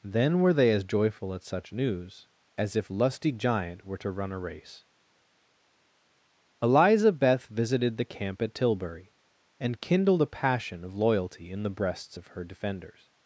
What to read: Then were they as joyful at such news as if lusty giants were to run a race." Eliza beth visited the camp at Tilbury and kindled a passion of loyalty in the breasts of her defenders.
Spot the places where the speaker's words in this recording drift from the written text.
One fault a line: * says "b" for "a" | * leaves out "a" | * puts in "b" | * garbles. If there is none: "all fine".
* says "giant" for "giants"